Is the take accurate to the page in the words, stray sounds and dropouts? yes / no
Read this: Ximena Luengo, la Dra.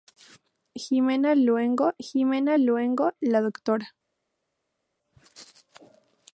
no